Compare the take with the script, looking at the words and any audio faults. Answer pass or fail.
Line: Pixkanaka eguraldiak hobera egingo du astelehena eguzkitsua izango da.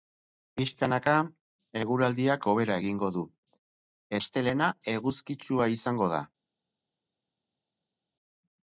pass